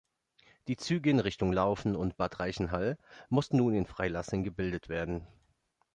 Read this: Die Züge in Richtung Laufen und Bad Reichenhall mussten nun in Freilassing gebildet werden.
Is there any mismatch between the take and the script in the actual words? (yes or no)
no